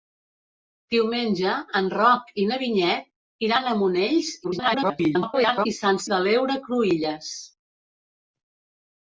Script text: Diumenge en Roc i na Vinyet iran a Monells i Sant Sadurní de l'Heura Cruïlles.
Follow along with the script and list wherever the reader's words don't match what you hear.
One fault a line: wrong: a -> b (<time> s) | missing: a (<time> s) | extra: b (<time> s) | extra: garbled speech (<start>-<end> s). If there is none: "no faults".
extra: garbled speech (4.4-5.7 s)
missing: Sadurní (6.0 s)